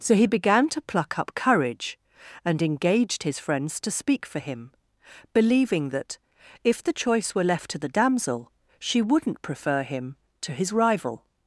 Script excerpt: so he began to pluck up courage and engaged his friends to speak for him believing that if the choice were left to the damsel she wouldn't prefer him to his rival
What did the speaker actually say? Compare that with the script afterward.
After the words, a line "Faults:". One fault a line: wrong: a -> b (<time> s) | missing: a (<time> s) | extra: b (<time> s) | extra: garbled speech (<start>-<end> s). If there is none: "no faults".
so he began to pluck up courage and engaged his friends to speak for him believing that if the choice were left to the damsel she wouldn't prefer him to his rival
Faults:
no faults